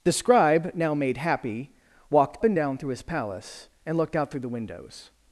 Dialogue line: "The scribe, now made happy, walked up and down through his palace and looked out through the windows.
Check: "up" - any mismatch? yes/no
yes